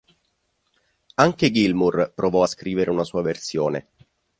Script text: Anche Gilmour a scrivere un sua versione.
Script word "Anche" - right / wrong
right